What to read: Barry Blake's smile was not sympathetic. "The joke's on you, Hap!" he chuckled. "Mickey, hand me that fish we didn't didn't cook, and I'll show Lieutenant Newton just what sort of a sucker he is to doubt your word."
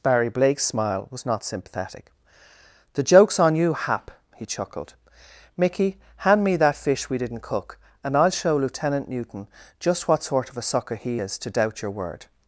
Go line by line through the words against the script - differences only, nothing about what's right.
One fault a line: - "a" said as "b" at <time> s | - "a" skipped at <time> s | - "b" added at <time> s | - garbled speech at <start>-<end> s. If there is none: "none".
- "didn't" skipped at 7.4 s